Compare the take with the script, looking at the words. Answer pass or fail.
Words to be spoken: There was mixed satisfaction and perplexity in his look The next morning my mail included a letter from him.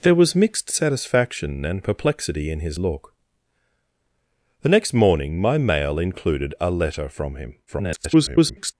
fail